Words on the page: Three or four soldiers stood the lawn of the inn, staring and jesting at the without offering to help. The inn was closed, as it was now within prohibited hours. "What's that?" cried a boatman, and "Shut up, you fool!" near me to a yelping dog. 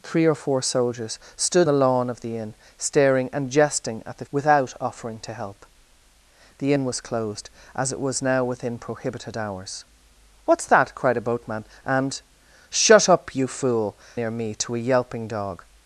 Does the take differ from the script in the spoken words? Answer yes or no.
no